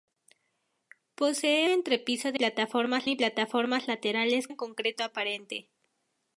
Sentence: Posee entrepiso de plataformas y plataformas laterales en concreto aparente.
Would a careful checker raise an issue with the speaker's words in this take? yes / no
no